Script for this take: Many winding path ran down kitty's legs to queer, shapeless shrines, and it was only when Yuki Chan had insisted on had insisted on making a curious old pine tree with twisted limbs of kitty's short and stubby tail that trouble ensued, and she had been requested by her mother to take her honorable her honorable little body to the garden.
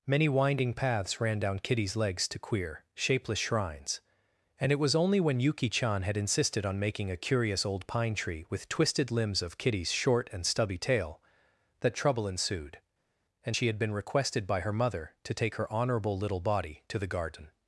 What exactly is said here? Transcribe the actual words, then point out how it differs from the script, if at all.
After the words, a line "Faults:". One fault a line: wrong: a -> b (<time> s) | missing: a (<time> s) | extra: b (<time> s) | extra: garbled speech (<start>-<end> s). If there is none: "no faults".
Many winding paths ran down kitty's legs to queer, shapeless shrines, and it was only when Yuki Chan had insisted on making a curious old pine tree with twisted limbs of kitty's short and stubby tail that trouble ensued, and she had been requested by her mother to take her honorable little body to the garden.
Faults:
wrong: path -> paths (0.7 s)
missing: had insisted on (6.8 s)
missing: her honorable (16.2 s)